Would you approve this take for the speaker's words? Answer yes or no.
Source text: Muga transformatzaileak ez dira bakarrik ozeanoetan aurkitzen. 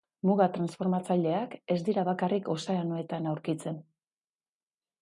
yes